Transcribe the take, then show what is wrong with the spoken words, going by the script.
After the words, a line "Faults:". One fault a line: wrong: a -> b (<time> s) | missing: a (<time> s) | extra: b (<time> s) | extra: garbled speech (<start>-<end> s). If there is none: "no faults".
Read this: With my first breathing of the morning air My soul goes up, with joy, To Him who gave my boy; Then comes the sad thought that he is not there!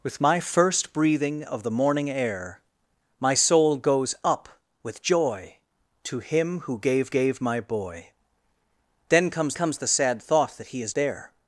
With my first breathing of the morning air My soul goes up, with joy, To Him who gave gave my boy; Then comes comes the sad thought that he is there!
Faults:
extra: gave (7.1 s)
extra: comes (9.5 s)
missing: not (10.9 s)